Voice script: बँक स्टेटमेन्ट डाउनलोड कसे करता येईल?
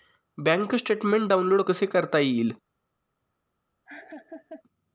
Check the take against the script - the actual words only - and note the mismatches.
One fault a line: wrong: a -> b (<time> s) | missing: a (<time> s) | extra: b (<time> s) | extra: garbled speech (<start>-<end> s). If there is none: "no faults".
no faults